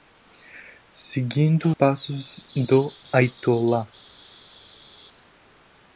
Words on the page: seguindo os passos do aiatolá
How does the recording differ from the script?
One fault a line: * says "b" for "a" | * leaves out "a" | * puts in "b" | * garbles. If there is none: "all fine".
* leaves out "os"